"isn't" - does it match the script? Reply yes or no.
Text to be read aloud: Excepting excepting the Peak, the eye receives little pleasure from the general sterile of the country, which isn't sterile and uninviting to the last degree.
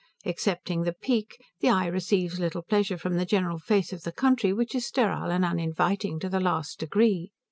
no